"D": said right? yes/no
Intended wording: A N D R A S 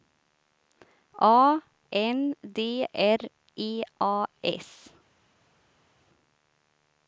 yes